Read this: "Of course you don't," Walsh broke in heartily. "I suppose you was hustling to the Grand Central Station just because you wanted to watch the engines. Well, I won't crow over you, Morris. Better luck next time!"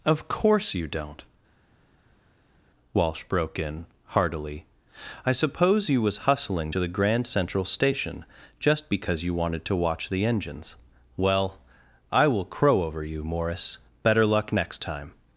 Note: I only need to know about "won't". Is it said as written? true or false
false